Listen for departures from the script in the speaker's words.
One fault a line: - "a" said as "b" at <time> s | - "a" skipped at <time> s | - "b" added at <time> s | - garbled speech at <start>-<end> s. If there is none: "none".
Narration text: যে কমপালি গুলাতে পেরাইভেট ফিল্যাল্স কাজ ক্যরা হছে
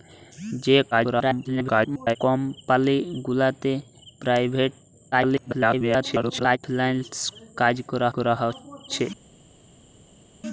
- garbled speech at 0.9-2.2 s
- garbled speech at 5.1-6.6 s
- "ক্যরা" added at 8.1 s